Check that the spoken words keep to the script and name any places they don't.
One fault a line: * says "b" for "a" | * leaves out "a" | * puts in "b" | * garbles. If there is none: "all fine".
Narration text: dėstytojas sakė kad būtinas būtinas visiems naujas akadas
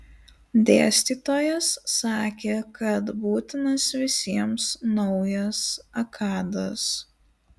* leaves out "būtinas"